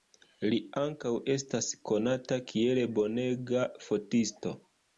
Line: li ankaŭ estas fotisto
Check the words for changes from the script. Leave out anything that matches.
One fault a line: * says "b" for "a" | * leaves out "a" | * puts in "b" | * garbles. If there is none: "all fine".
* puts in "konata kiel bonega"